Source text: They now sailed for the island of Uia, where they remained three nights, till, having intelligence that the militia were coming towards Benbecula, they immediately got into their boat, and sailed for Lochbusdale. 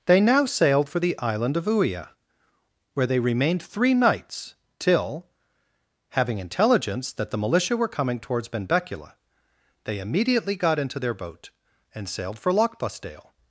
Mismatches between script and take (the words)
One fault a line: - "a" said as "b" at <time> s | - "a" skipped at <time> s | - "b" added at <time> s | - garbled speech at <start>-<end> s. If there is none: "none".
none